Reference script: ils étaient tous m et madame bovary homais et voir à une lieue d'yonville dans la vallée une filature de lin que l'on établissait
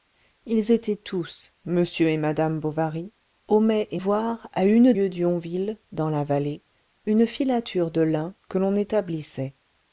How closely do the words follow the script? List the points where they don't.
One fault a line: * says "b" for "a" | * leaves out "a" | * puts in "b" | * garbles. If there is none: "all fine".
all fine